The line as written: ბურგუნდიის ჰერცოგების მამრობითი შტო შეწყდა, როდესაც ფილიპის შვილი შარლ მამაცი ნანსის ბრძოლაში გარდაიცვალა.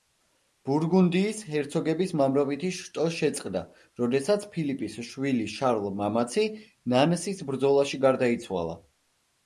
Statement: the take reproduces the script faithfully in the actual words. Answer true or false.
true